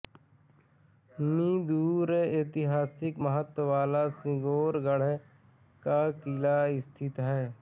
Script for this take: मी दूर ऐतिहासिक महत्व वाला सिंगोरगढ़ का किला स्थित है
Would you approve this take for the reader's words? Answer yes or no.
yes